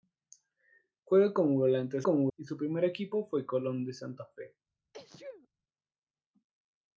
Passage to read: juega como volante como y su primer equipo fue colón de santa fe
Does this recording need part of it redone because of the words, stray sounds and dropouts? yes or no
yes